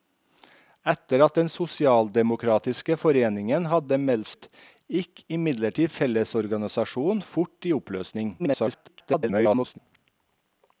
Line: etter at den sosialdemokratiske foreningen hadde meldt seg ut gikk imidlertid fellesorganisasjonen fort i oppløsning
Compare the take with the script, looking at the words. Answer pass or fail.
fail